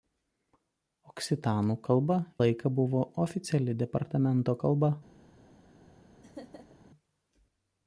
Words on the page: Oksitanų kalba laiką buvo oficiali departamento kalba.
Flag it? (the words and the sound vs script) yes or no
yes